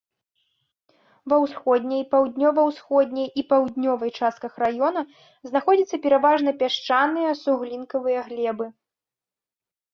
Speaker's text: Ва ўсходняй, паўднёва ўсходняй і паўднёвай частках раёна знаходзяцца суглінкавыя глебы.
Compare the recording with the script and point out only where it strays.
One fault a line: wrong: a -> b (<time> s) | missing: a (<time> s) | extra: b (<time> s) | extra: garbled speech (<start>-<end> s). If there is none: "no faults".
extra: пераважна пясчаныя (6.1 s)